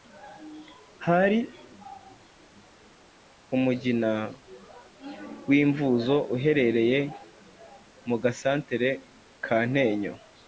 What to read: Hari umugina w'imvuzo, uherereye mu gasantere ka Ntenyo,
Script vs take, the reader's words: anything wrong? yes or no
no